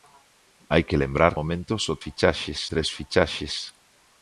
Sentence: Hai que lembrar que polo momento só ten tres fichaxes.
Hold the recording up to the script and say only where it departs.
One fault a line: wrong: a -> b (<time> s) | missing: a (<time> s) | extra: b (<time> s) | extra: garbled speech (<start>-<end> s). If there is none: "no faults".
missing: que polo (1.3 s)
wrong: ten -> fichaxes (2.0 s)